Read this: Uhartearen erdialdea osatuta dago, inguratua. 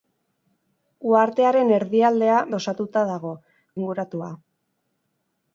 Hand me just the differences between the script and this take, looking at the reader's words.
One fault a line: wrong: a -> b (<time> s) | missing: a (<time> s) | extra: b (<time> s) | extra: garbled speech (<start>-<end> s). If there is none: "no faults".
no faults